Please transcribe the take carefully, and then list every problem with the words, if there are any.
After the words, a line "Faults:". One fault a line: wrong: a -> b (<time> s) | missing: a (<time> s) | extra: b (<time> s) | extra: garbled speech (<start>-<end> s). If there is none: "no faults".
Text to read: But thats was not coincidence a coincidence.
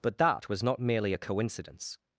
But that was not merely a coincidence.
Faults:
wrong: thats -> that (0.2 s)
wrong: coincidence -> merely (0.8 s)